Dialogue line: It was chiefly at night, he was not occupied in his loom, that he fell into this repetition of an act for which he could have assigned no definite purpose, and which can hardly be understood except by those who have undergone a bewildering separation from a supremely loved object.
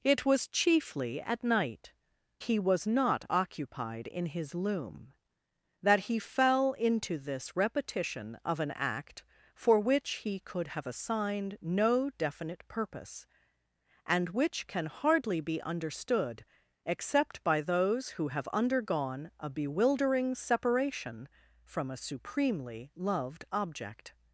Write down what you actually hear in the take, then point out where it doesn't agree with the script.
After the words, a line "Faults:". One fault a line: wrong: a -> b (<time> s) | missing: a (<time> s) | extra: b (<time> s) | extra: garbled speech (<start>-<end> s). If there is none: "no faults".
It was chiefly at night, he was not occupied in his loom, that he fell into this repetition of an act for which he could have assigned no definite purpose, and which can hardly be understood except by those who have undergone a bewildering separation from a supremely loved object.
Faults:
no faults